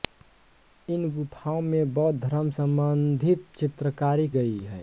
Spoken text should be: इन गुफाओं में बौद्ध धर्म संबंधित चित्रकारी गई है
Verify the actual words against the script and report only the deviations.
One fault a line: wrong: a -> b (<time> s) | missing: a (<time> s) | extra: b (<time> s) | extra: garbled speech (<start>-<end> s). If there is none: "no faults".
no faults